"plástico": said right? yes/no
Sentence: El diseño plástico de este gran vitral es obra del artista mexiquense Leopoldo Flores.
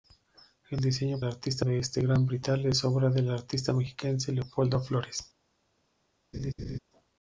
no